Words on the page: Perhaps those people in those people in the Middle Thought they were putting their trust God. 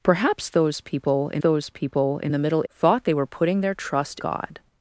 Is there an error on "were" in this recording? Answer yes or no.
no